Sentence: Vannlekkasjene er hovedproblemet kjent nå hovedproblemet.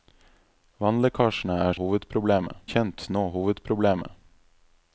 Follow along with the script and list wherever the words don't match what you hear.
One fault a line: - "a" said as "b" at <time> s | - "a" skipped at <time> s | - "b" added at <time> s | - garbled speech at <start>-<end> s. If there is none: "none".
none